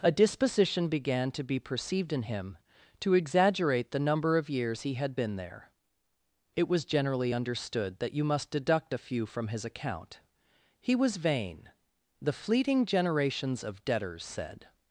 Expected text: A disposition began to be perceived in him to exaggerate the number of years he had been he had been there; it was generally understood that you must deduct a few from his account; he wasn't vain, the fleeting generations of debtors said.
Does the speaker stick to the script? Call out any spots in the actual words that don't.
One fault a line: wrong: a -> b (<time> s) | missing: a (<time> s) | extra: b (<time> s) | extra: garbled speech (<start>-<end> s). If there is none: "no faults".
missing: he had been (5.4 s)
wrong: wasn't -> was (10.9 s)